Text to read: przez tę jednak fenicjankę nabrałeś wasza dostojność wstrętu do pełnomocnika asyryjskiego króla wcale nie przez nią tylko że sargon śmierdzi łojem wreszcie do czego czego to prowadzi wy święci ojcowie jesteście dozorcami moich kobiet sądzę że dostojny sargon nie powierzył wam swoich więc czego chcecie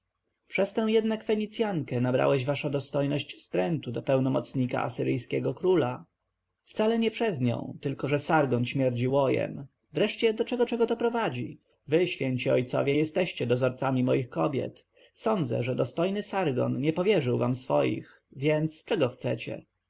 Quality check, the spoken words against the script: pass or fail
pass